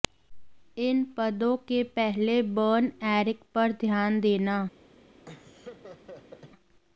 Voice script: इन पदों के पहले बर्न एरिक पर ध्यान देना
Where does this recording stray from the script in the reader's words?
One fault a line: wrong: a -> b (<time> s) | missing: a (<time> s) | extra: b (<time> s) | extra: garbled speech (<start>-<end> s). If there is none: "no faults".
no faults